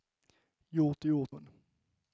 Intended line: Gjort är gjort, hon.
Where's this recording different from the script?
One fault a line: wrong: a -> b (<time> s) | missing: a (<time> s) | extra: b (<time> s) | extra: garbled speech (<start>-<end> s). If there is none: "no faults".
no faults